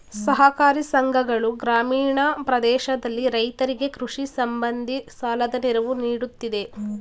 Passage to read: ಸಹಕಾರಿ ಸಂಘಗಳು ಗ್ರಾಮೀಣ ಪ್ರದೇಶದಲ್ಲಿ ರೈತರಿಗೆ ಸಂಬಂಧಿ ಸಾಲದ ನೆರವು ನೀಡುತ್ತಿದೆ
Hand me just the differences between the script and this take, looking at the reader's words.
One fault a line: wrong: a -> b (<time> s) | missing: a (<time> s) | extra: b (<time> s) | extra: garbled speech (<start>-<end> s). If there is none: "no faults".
extra: ಕೃಷಿ (4.0 s)